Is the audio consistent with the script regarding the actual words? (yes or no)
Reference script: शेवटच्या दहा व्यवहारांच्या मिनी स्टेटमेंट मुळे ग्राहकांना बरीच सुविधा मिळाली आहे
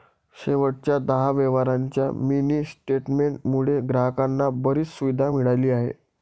yes